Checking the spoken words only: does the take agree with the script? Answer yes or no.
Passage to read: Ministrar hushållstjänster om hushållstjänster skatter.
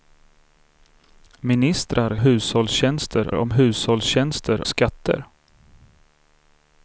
yes